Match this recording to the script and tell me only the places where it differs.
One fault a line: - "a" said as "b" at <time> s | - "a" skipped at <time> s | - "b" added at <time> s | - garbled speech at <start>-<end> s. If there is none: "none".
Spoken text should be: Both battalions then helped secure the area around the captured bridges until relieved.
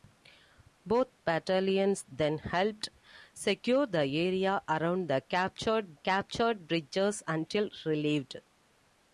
- "captured" added at 5.9 s